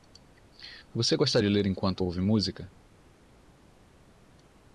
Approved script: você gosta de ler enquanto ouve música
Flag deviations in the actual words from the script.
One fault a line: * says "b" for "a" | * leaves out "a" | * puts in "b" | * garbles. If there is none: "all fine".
all fine